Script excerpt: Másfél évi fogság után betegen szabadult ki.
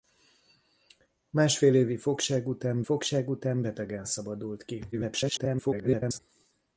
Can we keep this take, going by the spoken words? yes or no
no